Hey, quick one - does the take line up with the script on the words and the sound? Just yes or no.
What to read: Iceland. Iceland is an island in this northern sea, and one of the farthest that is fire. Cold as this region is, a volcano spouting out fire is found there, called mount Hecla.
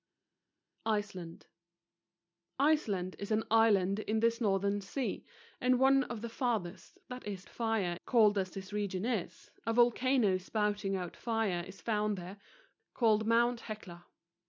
yes